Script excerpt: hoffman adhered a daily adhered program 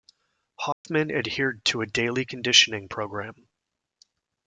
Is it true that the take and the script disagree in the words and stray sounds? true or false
true